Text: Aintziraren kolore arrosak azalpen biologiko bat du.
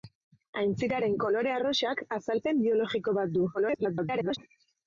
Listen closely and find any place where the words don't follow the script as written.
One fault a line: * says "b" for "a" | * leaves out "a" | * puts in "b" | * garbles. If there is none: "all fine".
* garbles